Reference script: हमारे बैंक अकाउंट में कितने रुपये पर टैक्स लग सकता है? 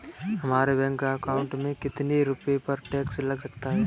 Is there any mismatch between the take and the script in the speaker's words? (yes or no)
no